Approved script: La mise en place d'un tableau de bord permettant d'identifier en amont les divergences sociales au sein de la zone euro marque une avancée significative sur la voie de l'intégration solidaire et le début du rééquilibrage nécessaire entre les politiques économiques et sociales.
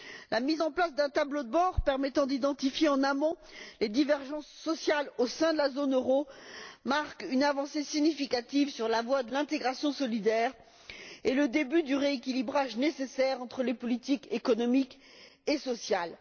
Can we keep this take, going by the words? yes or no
yes